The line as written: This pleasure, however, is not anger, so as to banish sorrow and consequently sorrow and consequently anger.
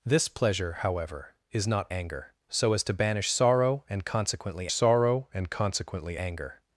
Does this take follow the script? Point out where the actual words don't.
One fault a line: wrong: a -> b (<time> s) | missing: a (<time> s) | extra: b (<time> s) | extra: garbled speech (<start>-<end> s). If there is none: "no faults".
no faults